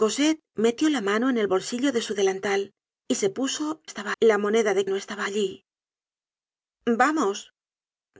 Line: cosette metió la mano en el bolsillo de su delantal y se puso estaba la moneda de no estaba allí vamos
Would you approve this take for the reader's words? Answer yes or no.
yes